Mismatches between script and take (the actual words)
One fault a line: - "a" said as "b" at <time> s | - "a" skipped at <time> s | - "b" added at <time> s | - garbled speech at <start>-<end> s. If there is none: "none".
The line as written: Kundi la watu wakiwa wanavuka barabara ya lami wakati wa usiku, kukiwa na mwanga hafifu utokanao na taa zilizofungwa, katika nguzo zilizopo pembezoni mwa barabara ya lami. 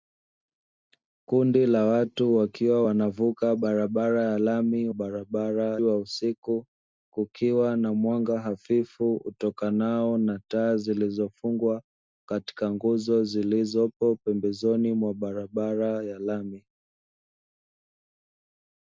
- "wakati" said as "barabara" at 4.9 s